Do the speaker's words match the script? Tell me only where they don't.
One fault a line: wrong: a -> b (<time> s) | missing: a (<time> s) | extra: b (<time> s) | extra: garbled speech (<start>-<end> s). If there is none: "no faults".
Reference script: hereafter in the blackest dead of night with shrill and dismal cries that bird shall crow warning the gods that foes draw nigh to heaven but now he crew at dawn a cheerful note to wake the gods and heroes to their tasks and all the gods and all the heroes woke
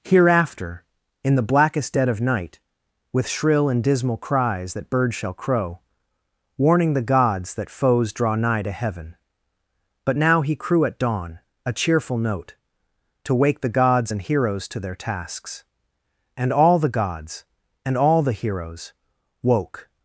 no faults